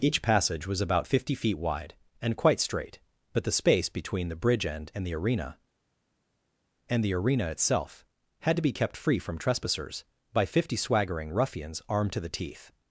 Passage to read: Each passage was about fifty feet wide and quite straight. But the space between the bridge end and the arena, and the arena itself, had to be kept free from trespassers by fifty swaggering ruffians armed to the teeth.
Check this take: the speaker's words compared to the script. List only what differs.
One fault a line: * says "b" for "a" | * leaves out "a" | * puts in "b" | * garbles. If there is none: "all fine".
all fine